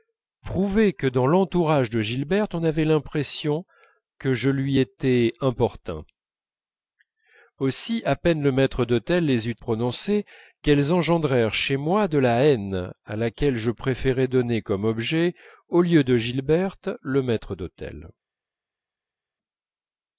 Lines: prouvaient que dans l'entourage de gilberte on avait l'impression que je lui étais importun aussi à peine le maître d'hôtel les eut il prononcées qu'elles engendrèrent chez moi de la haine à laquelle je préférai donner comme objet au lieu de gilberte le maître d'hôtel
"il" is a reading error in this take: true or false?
true